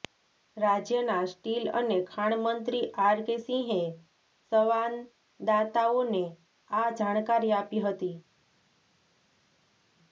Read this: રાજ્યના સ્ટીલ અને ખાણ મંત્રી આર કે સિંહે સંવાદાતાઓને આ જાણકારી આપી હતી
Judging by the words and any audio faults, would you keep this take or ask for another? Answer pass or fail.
pass